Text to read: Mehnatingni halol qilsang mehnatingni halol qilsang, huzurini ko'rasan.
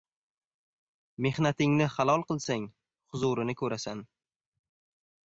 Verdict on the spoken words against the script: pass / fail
fail